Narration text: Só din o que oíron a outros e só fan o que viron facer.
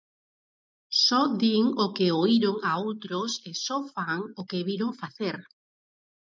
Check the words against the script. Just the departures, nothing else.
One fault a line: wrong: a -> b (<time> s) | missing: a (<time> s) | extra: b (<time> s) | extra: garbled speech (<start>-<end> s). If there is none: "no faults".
no faults